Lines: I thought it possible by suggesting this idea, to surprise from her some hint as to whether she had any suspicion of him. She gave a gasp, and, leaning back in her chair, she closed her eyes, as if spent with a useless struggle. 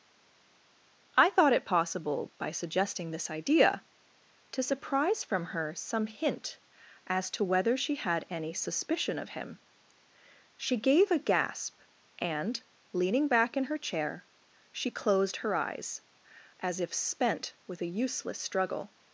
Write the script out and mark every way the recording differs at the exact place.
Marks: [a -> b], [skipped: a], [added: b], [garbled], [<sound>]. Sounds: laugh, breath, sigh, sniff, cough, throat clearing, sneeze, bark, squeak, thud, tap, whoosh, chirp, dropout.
I thought it possible by suggesting this idea, to surprise from her some hint as to whether she had any suspicion of him. She gave a gasp, and, leaning back in her chair, she closed her eyes, as if spent with a useless struggle.